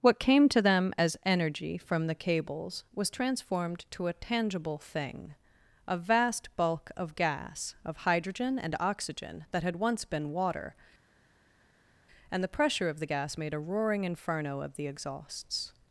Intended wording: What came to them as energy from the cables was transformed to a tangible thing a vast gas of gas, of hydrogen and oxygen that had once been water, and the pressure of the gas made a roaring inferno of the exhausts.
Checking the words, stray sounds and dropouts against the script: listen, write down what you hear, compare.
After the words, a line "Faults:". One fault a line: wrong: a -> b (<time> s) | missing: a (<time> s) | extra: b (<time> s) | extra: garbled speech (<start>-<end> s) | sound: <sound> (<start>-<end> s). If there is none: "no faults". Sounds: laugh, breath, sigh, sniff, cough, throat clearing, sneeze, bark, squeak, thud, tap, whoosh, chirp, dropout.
What came to them as energy from the cables was transformed to a tangible thing a vast bulk of gas, of hydrogen and oxygen that had once been water, and the pressure of the gas made a roaring inferno of the exhausts.
Faults:
wrong: gas -> bulk (6.6 s)